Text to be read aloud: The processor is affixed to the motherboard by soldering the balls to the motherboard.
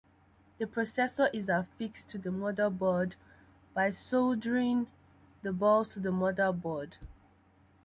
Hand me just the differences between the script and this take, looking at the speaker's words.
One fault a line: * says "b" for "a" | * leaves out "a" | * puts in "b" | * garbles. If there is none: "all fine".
all fine